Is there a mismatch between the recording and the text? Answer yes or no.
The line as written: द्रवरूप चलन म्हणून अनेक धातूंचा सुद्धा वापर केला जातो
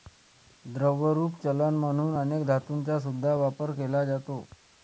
no